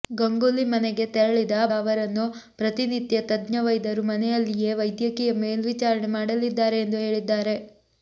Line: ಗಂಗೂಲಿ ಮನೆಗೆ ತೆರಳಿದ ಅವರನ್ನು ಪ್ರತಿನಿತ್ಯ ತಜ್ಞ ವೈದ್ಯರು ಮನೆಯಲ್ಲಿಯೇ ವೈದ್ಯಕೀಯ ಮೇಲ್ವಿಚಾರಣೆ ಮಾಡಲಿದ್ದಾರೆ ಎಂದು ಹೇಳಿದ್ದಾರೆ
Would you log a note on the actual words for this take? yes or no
no